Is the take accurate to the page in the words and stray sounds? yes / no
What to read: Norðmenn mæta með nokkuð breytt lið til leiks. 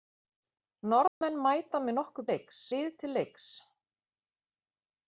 no